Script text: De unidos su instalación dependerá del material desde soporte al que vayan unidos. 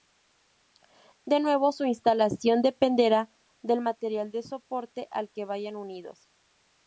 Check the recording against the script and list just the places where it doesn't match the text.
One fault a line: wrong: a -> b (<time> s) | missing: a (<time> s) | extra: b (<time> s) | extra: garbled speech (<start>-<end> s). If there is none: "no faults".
wrong: unidos -> nuevo (1.4 s)
wrong: desde -> de (4.3 s)